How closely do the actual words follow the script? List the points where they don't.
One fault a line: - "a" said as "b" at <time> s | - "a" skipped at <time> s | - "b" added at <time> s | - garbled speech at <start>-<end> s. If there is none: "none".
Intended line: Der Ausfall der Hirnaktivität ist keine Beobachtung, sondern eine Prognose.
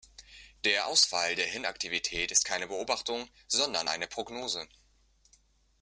none